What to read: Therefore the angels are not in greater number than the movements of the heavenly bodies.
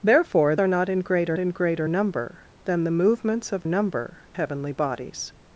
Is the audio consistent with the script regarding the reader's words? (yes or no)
no